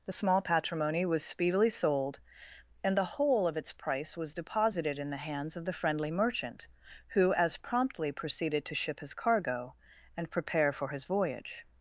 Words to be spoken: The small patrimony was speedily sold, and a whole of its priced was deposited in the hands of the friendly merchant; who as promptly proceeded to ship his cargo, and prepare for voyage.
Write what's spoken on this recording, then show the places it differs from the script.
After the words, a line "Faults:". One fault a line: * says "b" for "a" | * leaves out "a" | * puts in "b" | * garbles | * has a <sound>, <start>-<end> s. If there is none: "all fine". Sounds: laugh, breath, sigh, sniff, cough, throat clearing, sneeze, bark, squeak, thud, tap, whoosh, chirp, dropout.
The small patrimony was speedily sold, and the whole of its price was deposited in the hands of the friendly merchant; who as promptly proceeded to ship his cargo, and prepare for his voyage.
Faults:
* says "the" for "a"
* says "price" for "priced"
* puts in "his"